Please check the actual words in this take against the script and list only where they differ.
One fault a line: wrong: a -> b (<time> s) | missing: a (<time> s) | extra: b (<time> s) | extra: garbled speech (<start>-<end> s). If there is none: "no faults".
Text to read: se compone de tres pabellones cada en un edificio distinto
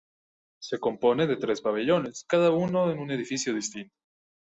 extra: uno (2.5 s)